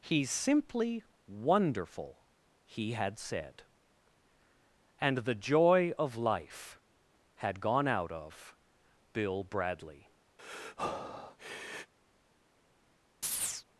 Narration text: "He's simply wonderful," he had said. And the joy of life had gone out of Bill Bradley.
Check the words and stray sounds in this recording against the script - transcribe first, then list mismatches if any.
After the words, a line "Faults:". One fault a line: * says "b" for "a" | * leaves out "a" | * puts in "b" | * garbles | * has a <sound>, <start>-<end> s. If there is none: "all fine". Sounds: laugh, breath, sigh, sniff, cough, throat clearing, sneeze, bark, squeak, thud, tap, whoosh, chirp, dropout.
"He's simply wonderful," he had said. And the joy of life had gone out of Bill Bradley.
Faults:
* has a breath, 10.4-11.9 s
* has a chirp, 13.2-13.6 s